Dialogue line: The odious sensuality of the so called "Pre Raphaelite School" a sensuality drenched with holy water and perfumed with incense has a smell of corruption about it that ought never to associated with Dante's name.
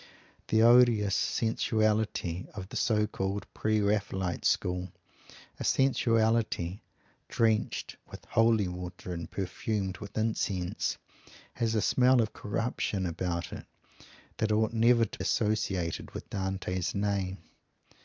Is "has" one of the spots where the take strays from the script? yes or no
no